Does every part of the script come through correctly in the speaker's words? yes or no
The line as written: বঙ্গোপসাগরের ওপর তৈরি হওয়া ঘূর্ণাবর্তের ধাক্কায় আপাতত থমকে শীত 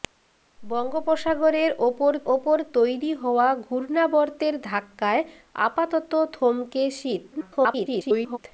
no